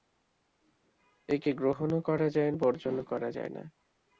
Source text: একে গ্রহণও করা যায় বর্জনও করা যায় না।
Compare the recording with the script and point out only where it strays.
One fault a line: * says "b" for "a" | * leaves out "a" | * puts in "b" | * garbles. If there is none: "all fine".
all fine